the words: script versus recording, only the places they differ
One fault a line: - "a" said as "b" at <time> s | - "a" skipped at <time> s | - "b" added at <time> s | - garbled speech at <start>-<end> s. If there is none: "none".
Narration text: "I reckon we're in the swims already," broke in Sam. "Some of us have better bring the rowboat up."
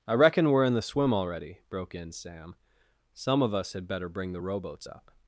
- "swims" said as "swim" at 0.8 s
- "have" said as "had" at 3.7 s
- "rowboat" said as "rowboats" at 4.4 s